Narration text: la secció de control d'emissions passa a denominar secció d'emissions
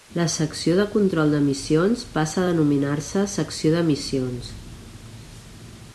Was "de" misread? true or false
false